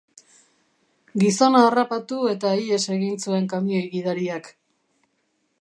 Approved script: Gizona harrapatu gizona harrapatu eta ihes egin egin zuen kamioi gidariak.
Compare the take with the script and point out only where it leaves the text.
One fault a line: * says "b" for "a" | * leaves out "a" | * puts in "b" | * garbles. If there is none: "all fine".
* leaves out "gizona harrapatu"
* leaves out "egin"